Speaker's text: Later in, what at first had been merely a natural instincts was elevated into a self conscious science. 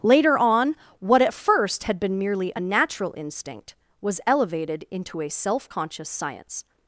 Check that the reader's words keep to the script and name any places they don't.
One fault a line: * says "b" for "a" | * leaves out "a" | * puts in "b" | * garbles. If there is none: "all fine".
* says "on" for "in"
* says "instinct" for "instincts"